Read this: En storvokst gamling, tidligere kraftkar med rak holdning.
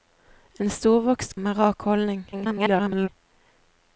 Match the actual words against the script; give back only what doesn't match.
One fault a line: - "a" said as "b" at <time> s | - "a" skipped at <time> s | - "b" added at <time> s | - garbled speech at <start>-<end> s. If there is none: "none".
- "gamling tidligere kraftkar" skipped at 1.4 s
- garbled speech at 2.3-3.1 s